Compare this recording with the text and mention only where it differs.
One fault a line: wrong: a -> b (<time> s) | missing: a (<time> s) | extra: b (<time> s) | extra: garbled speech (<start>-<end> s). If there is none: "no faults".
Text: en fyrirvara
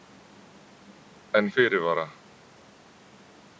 no faults